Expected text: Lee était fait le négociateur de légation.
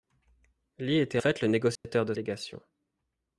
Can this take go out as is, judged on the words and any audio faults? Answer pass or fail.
fail